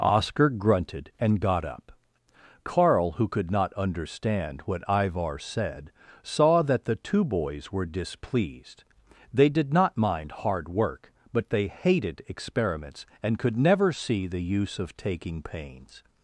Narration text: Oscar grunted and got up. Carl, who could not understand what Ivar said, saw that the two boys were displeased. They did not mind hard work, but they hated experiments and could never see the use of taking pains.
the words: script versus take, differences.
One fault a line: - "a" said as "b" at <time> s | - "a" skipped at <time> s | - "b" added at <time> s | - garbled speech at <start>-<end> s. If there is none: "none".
none